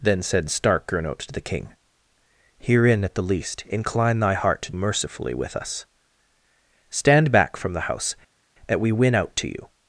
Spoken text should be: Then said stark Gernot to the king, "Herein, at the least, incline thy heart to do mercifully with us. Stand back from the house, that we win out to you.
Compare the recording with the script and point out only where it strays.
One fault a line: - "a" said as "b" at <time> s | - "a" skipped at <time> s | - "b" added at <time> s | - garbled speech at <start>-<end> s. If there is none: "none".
- "do" skipped at 4.7 s